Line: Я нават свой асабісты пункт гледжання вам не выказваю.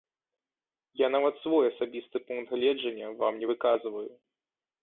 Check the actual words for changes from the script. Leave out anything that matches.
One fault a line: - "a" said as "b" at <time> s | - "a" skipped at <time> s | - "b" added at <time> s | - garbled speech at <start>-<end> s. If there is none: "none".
none